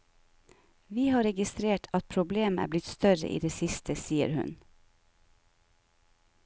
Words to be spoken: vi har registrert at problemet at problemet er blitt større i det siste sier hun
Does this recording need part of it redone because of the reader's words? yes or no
yes